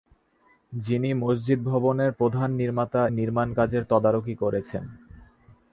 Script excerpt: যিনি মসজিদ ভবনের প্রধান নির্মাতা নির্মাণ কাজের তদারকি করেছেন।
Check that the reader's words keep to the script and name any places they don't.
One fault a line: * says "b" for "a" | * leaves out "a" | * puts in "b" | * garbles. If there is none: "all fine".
all fine